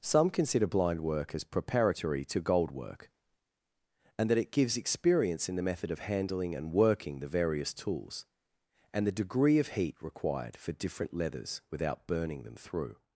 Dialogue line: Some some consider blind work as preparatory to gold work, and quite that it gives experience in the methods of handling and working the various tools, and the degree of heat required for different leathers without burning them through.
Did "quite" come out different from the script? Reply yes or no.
yes